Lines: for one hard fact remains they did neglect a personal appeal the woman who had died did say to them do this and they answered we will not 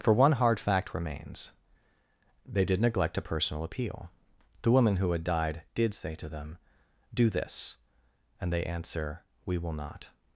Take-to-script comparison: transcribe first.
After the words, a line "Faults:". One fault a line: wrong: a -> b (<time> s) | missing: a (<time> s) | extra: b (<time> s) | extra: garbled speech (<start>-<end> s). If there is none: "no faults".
for one hard fact remains they did neglect a personal appeal the woman who had died did say to them do this and they answer we will not
Faults:
wrong: answered -> answer (8.6 s)